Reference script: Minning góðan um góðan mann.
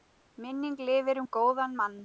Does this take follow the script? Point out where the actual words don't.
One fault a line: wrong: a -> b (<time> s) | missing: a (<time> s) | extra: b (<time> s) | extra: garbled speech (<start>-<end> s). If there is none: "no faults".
wrong: góðan -> lifir (0.9 s)